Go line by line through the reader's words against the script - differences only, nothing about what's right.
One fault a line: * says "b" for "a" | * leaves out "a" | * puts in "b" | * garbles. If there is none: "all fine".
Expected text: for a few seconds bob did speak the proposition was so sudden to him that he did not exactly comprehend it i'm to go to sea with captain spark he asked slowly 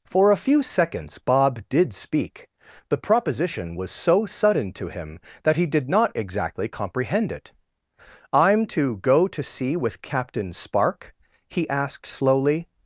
all fine